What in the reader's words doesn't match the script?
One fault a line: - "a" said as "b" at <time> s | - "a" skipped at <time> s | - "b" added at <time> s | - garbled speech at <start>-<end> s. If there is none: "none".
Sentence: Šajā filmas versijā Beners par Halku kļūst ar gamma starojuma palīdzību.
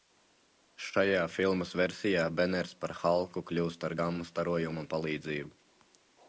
none